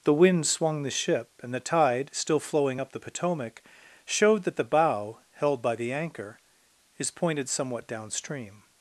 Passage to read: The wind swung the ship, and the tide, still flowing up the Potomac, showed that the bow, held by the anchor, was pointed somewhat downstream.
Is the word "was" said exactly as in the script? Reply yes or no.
no